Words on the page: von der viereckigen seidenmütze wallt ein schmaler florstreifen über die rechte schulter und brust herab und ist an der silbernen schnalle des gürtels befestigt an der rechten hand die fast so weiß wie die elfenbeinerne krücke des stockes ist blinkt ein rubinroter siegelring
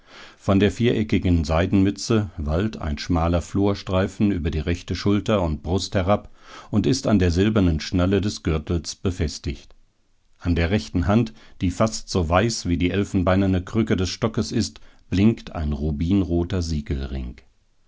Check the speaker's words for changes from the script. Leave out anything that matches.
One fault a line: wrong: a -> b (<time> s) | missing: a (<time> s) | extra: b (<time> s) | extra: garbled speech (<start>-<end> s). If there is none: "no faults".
no faults